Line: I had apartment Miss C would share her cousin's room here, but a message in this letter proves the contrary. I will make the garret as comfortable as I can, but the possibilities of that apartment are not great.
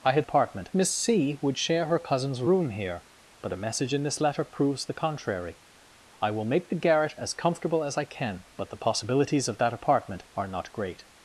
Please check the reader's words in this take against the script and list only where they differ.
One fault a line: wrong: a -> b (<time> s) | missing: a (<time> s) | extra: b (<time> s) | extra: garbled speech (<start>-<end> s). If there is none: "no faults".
no faults